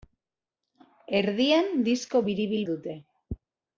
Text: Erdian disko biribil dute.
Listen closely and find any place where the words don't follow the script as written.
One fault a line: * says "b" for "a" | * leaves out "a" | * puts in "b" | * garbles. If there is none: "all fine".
all fine